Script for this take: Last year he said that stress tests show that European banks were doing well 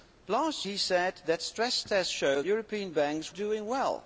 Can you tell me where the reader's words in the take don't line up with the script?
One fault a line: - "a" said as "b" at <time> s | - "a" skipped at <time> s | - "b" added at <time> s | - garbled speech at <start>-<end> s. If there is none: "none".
- "year" skipped at 0.7 s
- "that" skipped at 2.4 s
- "were" skipped at 3.3 s